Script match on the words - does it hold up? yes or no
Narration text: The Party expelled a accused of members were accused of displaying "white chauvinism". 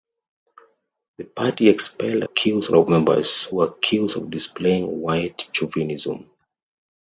yes